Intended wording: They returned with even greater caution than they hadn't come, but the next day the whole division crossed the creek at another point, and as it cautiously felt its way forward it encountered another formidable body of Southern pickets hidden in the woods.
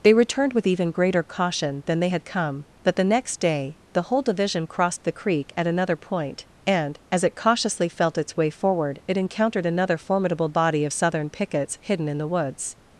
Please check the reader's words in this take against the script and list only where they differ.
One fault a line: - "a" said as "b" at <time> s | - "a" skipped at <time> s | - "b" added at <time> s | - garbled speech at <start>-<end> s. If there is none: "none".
- "hadn't" said as "had" at 2.1 s